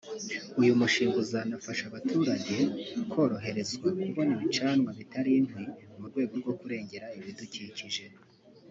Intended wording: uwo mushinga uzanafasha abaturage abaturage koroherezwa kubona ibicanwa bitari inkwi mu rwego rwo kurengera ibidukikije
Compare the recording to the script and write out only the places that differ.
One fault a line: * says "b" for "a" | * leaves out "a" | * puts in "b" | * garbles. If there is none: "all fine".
* says "uyu" for "uwo"
* leaves out "abaturage"